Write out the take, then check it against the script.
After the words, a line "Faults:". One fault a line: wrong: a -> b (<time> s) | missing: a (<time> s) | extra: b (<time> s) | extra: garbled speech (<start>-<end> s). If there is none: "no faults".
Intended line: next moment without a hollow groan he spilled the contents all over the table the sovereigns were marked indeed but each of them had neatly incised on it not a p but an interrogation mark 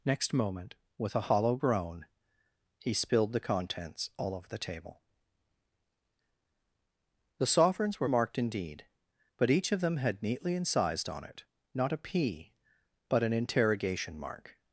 next moment with a hollow groan he spilled the contents all over the table the sovereigns were marked indeed but each of them had neatly incised on it not a p but an interrogation mark
Faults:
wrong: without -> with (1.0 s)